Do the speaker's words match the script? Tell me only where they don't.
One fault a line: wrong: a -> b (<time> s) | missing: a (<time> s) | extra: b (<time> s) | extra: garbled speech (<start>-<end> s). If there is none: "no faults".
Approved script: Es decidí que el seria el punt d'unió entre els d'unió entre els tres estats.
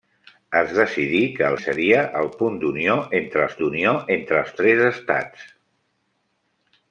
no faults